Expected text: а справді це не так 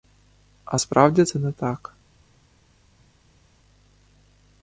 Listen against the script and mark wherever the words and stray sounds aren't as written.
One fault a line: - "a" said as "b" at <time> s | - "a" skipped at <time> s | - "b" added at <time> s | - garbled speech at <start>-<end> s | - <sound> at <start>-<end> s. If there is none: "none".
none